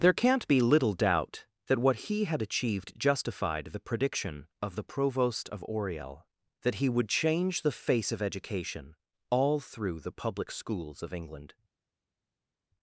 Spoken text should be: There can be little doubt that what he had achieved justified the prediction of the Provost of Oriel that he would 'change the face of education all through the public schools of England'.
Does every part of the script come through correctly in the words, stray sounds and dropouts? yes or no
no